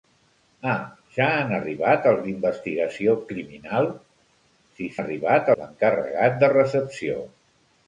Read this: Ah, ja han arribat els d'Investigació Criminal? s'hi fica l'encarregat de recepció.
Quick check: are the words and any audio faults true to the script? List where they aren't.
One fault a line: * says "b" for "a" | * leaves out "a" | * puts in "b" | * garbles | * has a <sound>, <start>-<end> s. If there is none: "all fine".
* says "arribat" for "fica"